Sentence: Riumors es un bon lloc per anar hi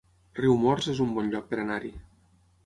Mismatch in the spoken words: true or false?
false